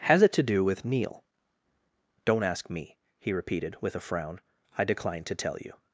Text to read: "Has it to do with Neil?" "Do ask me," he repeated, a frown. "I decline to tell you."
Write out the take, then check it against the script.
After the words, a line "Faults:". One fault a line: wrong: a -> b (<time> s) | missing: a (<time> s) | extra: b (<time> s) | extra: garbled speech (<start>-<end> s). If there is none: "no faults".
"Has it to do with Neil?" "Don't ask me," he repeated, with a frown. "I decline to tell you."
Faults:
wrong: Do -> Don't (2.2 s)
extra: with (3.8 s)